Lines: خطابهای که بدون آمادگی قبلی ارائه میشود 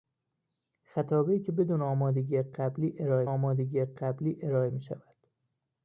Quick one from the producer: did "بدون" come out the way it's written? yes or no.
yes